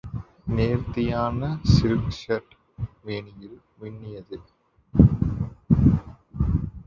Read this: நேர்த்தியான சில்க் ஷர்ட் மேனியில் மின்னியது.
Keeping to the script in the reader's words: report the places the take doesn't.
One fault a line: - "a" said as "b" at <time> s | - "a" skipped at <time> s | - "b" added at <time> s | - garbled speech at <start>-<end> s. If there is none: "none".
none